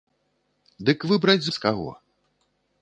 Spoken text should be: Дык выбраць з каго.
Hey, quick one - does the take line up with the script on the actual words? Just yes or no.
yes